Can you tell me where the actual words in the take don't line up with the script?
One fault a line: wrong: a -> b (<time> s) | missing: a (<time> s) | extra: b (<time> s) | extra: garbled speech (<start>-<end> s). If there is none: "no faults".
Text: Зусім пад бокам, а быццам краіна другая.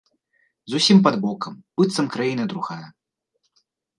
missing: а (1.6 s)